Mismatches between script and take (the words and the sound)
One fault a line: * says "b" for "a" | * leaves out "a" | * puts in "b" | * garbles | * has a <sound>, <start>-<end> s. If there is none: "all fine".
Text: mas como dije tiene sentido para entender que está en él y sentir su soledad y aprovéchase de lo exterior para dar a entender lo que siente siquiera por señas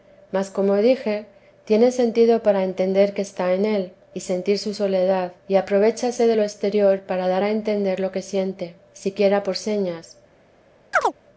* has a chirp, 10.9-11.1 s